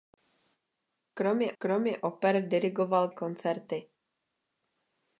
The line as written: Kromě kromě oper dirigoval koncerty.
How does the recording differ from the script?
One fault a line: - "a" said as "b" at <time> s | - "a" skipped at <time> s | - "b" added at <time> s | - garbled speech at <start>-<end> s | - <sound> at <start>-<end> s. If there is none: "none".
none